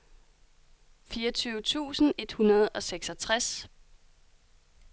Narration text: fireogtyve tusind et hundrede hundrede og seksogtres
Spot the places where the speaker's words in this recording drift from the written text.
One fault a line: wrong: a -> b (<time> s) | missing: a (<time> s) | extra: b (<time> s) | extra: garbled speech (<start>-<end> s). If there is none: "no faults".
missing: hundrede (2.7 s)